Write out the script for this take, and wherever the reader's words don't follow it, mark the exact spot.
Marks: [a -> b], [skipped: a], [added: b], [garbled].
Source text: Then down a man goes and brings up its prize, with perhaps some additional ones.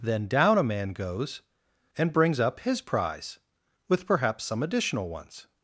Then down a man goes and brings up [its -> his] prize, with perhaps some additional ones.